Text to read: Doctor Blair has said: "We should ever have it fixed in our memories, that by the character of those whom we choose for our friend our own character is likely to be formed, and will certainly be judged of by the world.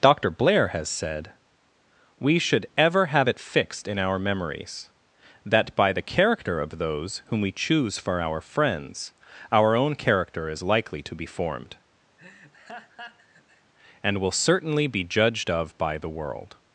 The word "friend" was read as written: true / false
false